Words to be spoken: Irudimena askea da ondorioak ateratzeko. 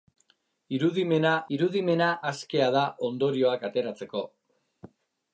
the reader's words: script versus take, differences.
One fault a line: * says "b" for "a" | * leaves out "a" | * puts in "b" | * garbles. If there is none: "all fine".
* puts in "irudimena"